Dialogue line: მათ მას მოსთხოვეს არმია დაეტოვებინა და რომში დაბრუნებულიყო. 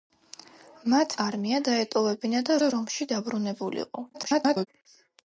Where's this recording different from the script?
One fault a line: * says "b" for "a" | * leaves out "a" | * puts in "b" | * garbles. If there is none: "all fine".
* leaves out "მას მოსთხოვეს"
* puts in "და"
* garbles